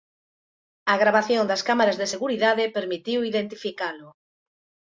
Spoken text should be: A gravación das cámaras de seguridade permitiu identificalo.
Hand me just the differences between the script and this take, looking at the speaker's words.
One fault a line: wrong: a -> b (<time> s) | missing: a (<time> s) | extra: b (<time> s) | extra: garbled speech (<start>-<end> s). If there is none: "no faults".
no faults